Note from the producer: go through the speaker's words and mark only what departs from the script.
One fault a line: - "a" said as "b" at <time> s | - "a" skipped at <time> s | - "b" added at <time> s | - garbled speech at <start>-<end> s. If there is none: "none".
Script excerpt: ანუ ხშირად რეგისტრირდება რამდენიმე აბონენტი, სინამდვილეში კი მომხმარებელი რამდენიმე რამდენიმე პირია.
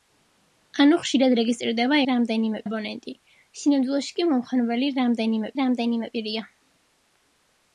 none